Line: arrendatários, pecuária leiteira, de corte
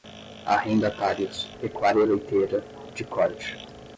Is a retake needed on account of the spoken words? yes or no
no